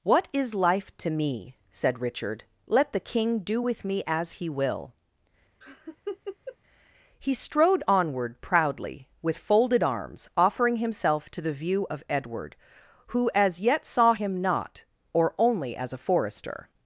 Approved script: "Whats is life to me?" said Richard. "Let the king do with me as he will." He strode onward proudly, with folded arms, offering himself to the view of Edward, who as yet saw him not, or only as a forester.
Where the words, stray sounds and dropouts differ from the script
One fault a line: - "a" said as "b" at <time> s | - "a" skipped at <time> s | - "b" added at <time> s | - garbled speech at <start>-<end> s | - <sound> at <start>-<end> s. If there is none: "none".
- "Whats" said as "What" at 0.0 s
- laugh at 5.6-6.6 s